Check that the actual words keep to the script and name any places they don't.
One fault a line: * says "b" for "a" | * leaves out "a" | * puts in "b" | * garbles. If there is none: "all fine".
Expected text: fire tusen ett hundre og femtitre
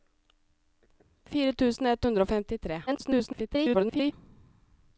* garbles